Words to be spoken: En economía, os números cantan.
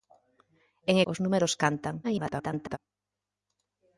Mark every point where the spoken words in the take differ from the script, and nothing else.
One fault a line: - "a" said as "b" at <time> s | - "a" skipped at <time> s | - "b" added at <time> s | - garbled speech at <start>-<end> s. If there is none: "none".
- "economía" skipped at 0.9 s
- garbled speech at 2.0-2.8 s